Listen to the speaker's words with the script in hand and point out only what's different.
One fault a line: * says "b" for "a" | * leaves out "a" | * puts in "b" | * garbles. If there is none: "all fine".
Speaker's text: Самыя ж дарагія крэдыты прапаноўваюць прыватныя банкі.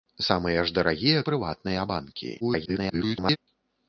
* leaves out "крэдыты прапаноўваюць"
* garbles